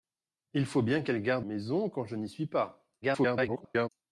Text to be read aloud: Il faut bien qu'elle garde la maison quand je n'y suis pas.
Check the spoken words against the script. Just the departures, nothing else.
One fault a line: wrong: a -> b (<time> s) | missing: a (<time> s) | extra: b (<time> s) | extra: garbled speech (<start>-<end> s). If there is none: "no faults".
missing: la (1.4 s)
extra: garbled speech (3.0-3.9 s)